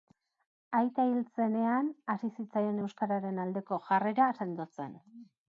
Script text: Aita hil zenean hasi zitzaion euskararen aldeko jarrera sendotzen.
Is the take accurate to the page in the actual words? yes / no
yes